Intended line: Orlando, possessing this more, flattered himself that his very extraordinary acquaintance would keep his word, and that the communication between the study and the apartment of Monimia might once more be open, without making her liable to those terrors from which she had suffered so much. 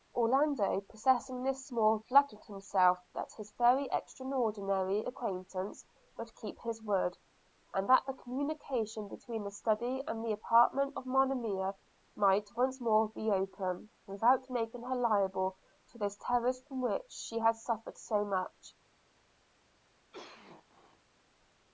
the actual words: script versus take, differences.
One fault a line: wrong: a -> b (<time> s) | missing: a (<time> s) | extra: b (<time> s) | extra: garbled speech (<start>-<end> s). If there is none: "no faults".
no faults